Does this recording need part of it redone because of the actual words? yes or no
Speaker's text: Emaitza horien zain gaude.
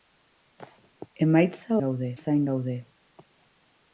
yes